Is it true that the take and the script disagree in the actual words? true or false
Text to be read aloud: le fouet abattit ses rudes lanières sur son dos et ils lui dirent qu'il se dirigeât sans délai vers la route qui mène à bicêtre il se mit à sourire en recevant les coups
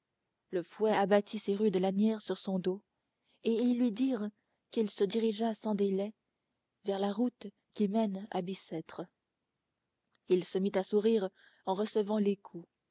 false